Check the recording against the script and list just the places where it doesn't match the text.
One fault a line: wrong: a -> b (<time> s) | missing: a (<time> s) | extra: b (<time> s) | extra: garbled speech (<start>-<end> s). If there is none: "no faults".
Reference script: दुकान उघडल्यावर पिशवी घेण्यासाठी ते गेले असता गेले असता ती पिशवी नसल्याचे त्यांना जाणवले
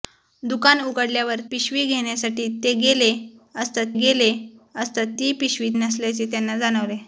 no faults